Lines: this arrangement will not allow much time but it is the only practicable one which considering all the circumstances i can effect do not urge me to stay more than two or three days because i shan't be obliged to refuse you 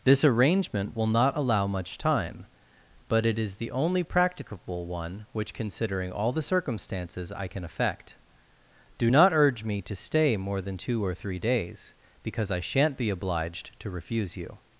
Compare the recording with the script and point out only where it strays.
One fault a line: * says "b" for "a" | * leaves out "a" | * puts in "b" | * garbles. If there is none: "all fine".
all fine